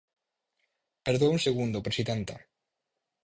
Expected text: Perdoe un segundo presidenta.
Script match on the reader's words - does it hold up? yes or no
yes